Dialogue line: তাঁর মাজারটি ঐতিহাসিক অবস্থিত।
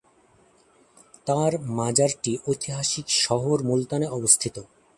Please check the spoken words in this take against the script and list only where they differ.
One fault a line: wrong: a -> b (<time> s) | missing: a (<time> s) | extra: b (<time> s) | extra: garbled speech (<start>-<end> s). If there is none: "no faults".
extra: শহর মুলতানে (3.2 s)